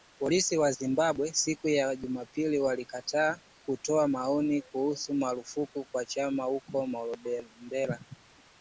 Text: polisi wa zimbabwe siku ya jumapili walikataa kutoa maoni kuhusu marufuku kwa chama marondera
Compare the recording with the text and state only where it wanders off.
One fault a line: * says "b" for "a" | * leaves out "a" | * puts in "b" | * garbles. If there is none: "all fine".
* puts in "huko"